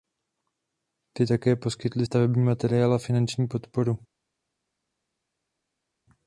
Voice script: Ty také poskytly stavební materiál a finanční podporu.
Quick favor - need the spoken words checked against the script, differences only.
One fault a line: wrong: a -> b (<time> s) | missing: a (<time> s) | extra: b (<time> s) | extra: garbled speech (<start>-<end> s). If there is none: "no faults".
no faults